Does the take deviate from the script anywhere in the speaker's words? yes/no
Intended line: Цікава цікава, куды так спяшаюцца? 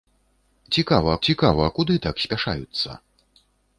no